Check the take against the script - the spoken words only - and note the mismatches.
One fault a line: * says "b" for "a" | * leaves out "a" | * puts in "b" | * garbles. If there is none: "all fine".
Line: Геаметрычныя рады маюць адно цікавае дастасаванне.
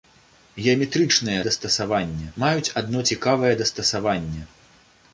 * says "дастасаванне" for "рады"